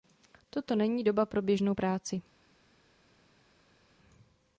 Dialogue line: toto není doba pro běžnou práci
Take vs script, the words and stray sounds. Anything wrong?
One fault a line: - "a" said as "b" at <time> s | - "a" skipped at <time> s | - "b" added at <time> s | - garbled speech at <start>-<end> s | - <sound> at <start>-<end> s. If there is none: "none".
none